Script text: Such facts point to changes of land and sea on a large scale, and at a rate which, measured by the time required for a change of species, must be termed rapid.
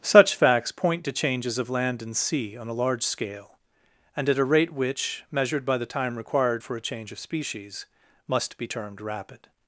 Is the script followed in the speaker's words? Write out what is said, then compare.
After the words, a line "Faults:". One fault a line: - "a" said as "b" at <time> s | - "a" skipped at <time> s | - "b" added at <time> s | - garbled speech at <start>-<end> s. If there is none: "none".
Such facts point to changes of land and sea on a large scale, and at a rate which, measured by the time required for a change of species, must be termed rapid.
Faults:
none